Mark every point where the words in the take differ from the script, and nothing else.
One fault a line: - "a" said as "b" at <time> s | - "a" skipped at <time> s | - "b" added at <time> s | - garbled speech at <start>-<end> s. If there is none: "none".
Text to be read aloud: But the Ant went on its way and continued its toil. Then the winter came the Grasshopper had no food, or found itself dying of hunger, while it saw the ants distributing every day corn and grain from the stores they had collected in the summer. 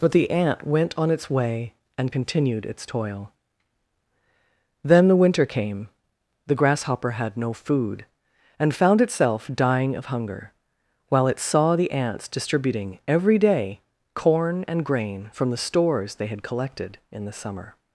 - "or" said as "and" at 8.6 s